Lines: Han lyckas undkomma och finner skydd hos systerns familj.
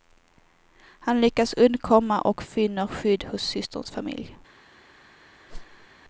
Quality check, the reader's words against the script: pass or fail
pass